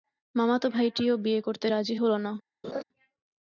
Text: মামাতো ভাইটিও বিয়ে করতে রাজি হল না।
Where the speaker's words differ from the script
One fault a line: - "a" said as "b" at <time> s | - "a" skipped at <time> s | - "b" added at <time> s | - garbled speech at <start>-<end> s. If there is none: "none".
none